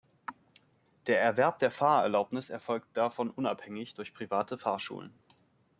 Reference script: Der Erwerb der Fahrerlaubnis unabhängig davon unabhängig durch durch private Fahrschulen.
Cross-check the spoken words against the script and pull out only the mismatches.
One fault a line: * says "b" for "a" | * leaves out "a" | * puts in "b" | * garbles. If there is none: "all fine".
* says "erfolgt" for "unabhängig"
* leaves out "durch"